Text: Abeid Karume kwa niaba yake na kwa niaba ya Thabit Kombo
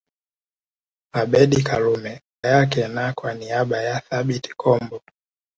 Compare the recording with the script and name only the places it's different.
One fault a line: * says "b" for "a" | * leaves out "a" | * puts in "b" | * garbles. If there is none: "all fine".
* leaves out "kwa niaba"